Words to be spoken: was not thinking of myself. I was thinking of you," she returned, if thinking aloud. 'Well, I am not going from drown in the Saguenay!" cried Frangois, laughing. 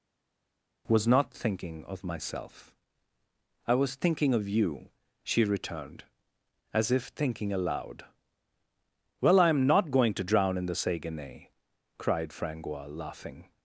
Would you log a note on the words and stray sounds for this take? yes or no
yes